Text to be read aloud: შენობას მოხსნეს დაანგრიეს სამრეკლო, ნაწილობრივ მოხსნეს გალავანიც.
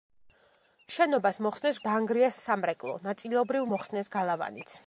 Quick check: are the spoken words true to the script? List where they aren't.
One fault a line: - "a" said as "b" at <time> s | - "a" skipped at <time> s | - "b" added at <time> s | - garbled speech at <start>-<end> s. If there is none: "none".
none